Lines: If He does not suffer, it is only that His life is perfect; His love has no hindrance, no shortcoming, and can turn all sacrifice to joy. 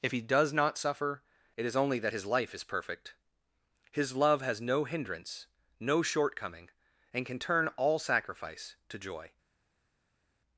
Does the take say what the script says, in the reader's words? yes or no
yes